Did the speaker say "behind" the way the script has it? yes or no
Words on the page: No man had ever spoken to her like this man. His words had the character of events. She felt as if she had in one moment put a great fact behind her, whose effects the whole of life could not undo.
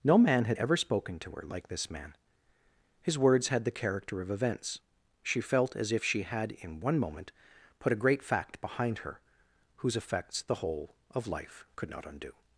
yes